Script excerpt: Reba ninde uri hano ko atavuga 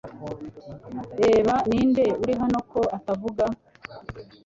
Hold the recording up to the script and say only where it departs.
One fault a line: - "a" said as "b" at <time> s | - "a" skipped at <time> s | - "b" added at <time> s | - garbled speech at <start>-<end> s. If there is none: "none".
none